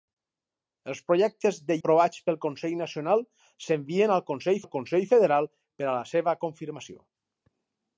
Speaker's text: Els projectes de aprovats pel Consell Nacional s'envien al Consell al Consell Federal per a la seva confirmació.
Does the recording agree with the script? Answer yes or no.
yes